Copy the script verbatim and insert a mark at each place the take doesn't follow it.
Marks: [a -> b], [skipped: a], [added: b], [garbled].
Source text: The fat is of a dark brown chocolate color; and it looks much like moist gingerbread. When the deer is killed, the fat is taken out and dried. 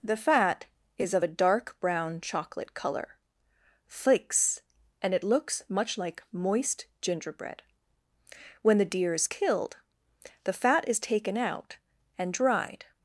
The fat is of a dark brown chocolate color; [added: flakes] and it looks much like moist gingerbread. When the deer is killed, the fat is taken out and dried.